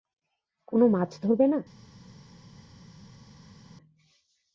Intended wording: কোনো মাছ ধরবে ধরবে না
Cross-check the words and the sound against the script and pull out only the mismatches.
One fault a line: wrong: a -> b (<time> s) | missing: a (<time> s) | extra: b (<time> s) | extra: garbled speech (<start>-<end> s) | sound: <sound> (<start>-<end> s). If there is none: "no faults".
missing: ধরবে (1.4 s)